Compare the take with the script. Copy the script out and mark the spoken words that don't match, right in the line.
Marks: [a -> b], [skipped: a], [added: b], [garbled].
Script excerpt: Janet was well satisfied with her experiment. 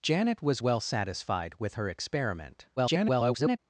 Janet was well satisfied with her experiment. [garbled]